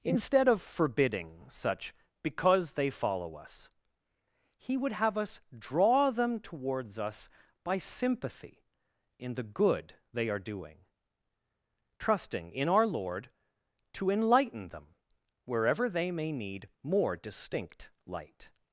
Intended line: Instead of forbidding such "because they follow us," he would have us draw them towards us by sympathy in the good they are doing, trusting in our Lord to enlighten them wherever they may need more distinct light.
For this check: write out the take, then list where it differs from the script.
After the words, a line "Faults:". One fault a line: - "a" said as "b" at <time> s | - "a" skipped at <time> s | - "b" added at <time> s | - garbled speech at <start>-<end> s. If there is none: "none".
Instead of forbidding such "because they follow us," he would have us draw them towards us by sympathy in the good they are doing, trusting in our Lord to enlighten them wherever they may need more distinct light.
Faults:
none